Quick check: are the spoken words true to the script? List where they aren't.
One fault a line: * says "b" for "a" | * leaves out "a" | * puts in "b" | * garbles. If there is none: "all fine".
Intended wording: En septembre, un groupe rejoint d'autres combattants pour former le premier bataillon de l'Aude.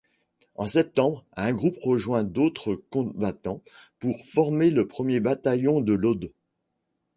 all fine